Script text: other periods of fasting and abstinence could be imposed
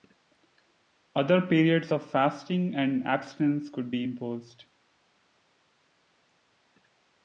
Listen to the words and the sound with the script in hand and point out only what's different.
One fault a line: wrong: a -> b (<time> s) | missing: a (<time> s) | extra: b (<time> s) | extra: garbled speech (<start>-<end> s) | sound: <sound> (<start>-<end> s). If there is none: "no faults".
no faults